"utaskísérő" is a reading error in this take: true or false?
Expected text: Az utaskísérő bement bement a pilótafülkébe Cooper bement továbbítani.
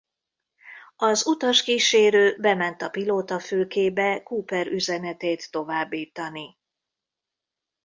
false